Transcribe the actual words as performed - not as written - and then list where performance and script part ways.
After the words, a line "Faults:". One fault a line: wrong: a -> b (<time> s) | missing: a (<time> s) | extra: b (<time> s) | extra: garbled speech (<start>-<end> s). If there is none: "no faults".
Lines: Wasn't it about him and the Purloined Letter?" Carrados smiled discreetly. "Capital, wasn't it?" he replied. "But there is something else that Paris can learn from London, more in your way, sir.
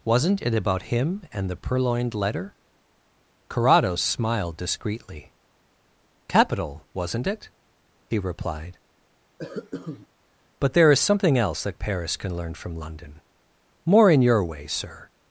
Wasn't it about him and the Purloined Letter?" Carrados smiled discreetly. "Capital, wasn't it?" he replied. "But there is something else that Paris can learn from London, more in your way, sir.
Faults:
no faults